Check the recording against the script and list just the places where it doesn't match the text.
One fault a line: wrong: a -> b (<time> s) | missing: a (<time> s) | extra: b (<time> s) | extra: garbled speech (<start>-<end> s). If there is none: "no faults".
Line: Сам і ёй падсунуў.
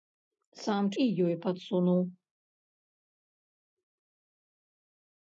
no faults